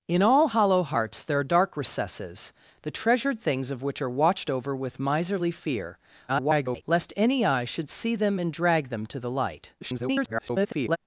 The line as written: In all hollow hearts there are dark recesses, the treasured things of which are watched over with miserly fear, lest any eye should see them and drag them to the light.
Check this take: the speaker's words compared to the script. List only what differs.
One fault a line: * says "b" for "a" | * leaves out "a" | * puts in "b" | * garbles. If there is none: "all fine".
* garbles
* garbles